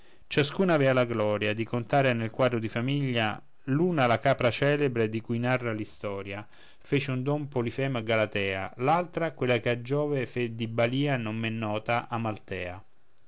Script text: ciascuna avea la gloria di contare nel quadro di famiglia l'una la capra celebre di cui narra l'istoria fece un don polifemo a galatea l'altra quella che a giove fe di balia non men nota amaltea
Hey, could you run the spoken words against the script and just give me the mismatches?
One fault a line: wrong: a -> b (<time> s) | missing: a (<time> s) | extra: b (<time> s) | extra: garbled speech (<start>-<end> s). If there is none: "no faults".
no faults